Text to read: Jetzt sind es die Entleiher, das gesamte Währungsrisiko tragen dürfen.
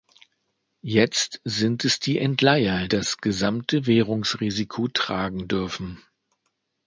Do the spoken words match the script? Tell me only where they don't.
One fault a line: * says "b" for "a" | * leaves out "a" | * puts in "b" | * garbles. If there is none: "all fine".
all fine